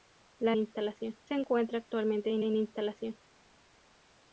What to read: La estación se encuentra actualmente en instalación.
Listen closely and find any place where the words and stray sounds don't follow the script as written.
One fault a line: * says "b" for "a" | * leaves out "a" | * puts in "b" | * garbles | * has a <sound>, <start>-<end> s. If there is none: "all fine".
* says "instalación" for "estación"
* puts in "en"